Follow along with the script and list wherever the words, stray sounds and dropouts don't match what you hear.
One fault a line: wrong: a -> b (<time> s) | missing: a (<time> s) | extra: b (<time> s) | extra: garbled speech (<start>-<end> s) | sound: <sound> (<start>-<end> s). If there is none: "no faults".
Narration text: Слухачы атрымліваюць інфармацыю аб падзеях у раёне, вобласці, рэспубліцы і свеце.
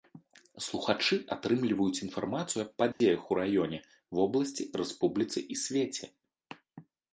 sound: dropout (2.9-3.0 s)